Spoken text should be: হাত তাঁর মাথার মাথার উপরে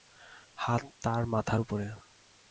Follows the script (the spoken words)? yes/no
no